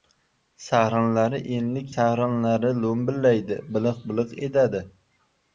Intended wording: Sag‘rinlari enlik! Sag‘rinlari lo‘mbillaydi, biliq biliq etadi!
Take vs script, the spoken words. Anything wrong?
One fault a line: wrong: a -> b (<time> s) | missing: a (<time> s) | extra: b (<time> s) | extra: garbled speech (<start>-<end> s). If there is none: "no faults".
no faults